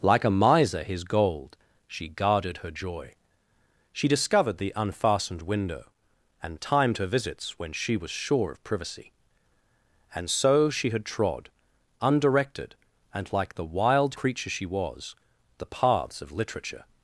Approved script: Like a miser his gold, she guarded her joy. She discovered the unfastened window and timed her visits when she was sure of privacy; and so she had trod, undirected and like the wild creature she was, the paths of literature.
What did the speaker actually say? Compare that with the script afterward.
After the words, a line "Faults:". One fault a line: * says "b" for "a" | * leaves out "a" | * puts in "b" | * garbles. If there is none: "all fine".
Like a miser his gold, she guarded her joy. She discovered the unfastened window and timed her visits when she was sure of privacy; and so she had trod, undirected and like the wild creature she was, the paths of literature.
Faults:
all fine